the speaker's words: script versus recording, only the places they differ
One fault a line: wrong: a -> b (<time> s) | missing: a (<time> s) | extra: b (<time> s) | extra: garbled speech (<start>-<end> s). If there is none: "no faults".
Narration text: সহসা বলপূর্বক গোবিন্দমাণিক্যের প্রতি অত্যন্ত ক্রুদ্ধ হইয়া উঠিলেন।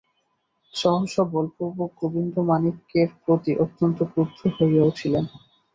no faults